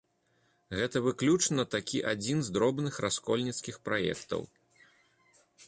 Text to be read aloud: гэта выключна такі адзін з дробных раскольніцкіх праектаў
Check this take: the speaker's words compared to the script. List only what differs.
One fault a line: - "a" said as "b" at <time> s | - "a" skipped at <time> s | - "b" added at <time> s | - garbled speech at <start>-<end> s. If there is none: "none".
none